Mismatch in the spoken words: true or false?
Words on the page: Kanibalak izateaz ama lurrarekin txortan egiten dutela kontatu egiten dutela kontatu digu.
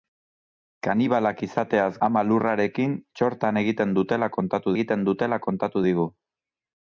false